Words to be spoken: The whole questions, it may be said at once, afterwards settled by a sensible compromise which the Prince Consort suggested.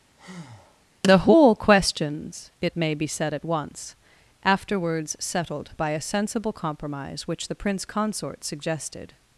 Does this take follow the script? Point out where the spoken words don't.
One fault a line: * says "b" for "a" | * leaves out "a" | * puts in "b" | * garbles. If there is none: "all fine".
all fine